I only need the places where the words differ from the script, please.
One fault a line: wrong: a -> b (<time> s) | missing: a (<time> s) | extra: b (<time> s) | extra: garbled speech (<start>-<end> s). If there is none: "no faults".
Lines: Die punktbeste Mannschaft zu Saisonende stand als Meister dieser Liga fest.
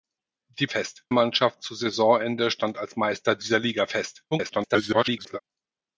wrong: punktbeste -> fest (0.7 s)
extra: garbled speech (4.3-5.4 s)